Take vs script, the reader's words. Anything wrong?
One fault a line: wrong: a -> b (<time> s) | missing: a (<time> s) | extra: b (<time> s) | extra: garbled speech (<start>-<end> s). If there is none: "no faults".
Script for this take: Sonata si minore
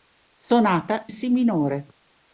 no faults